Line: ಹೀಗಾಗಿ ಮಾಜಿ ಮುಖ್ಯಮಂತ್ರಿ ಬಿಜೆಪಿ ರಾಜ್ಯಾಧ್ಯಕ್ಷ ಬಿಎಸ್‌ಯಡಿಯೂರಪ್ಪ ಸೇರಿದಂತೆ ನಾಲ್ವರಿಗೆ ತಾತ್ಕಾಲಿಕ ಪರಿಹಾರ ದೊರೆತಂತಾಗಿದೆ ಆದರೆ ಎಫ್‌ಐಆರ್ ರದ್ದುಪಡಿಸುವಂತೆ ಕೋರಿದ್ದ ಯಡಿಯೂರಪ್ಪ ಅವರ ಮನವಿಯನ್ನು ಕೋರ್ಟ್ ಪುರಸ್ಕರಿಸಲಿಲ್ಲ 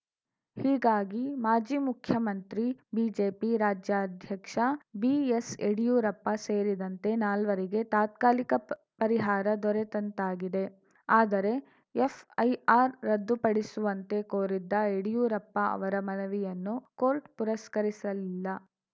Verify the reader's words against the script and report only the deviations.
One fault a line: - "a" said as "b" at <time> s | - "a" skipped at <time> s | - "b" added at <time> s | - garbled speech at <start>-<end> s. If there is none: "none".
none